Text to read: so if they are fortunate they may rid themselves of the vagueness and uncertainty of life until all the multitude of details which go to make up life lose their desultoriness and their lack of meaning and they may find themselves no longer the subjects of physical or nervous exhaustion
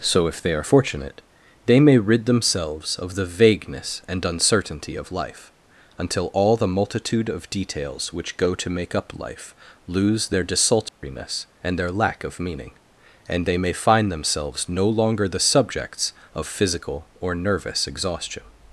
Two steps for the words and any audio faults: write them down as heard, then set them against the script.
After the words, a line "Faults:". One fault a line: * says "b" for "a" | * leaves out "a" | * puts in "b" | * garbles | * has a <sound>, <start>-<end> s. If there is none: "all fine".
so if they are fortunate they may rid themselves of the vagueness and uncertainty of life until all the multitude of details which go to make up life lose their desultoriness and their lack of meaning and they may find themselves no longer the subjects of physical or nervous exhaustion
Faults:
* has a dropout, 10.9-11.0 s